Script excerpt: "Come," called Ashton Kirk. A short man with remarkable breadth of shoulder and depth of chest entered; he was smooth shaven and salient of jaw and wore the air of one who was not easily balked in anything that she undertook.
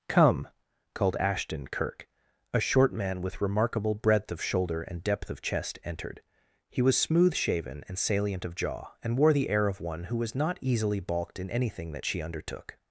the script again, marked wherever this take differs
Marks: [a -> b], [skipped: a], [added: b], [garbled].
"Come," called Ashton Kirk. A short man with remarkable breadth of shoulder and depth of chest entered; he was smooth shaven and salient of jaw and wore the air of one who was not easily balked in anything that she undertook.